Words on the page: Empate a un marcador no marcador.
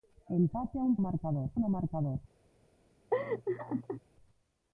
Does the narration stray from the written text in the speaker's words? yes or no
no